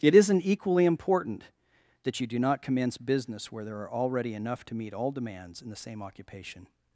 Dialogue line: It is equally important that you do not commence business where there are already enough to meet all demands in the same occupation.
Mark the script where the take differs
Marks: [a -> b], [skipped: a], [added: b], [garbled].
It [is -> isn't] equally important that you do not commence business where there are already enough to meet all demands in the same occupation.